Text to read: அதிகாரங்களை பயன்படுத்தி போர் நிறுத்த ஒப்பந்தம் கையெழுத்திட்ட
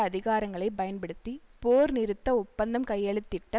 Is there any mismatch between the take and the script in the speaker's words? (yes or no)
no